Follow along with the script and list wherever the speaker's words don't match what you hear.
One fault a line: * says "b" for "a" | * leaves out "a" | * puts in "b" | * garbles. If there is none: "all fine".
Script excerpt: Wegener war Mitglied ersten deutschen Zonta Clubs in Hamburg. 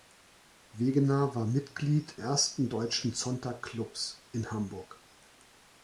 all fine